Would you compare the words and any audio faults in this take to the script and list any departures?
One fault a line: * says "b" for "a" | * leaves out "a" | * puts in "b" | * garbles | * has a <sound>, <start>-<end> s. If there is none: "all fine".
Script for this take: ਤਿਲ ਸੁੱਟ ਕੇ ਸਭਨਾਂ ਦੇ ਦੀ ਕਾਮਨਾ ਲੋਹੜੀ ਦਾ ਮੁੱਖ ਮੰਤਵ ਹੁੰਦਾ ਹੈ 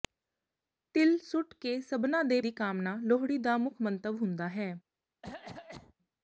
* has a cough, 5.2-5.9 s